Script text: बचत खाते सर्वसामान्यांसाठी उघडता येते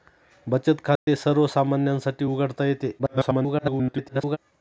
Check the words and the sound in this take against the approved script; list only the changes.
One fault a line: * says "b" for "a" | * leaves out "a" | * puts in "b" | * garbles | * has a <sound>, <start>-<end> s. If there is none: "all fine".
* has a dropout, 1.0-1.1 s
* garbles